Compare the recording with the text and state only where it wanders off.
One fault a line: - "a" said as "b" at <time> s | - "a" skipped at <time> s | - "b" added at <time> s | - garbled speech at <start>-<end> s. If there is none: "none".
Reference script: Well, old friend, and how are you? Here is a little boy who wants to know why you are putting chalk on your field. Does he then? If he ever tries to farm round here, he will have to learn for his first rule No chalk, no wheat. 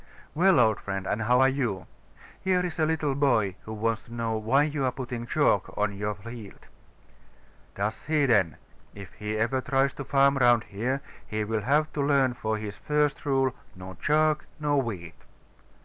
none